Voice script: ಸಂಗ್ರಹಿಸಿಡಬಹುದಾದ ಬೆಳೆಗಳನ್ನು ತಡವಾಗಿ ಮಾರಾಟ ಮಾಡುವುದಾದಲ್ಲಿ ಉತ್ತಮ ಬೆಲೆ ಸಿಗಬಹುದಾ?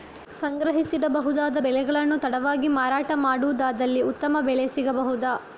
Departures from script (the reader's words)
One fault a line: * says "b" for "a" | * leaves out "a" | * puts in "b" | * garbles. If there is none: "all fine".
all fine